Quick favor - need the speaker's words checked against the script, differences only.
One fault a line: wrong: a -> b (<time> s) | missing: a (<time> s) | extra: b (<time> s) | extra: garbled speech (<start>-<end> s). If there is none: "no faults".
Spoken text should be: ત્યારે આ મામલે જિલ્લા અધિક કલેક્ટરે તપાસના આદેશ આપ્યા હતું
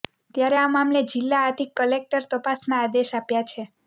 wrong: હતું -> છે (3.5 s)